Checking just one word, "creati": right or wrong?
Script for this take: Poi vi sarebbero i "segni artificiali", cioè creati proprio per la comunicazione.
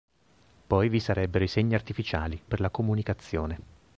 wrong